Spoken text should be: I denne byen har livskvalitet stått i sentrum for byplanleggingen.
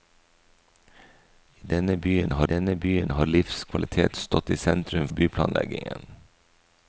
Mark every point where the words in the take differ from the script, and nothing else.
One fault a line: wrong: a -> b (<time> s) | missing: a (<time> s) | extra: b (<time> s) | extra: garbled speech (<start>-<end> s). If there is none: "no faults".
extra: denne byen har (2.5 s)
missing: for (5.1 s)